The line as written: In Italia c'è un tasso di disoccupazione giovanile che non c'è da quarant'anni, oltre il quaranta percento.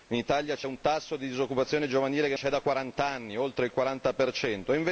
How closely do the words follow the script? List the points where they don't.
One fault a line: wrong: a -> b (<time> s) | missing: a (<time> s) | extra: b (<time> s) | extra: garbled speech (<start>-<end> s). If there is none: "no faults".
missing: non (2.3 s)